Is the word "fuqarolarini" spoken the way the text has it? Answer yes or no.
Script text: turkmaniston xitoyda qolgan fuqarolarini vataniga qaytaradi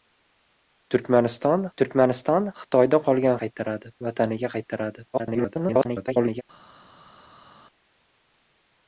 no